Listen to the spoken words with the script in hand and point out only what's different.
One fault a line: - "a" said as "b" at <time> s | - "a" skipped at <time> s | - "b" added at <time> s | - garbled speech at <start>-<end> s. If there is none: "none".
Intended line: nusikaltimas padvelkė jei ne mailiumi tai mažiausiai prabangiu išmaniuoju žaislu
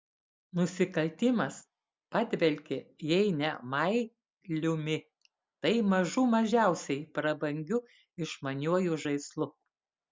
- "mažų" added at 5.9 s